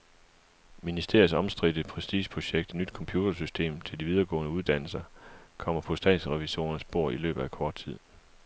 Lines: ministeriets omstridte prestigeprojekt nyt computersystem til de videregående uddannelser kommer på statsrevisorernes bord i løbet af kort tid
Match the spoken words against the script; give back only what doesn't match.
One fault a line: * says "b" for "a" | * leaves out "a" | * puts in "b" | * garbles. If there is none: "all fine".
all fine